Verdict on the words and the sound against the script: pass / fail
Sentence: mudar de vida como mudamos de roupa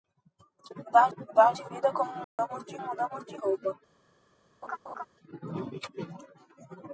fail